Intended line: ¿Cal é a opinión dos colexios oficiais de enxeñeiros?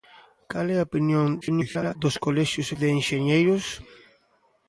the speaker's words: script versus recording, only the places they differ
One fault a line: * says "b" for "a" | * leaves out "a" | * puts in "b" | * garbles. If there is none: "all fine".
* garbles
* leaves out "oficiais"